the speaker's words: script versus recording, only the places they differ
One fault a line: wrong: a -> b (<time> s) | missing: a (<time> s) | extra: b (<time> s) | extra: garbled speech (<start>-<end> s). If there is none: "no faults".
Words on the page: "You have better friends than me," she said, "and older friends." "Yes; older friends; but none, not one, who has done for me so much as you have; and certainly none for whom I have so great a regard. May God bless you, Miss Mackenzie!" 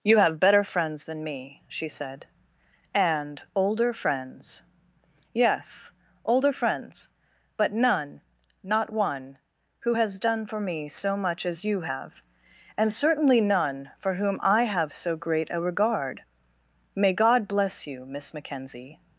no faults